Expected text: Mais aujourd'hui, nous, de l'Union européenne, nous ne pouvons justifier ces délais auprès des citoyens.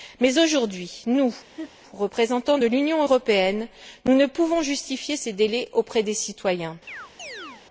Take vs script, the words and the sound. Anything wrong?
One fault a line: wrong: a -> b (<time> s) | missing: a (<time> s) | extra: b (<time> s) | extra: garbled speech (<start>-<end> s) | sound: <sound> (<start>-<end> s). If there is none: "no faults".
sound: laugh (1.5-1.7 s)
extra: représentants (1.9 s)
sound: chirp (6.9-7.6 s)